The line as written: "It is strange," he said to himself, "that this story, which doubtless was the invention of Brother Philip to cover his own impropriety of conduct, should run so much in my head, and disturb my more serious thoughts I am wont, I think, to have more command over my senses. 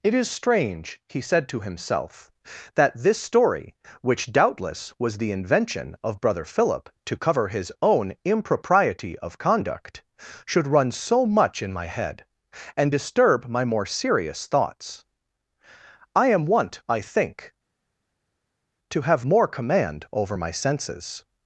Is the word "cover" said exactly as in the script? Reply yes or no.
yes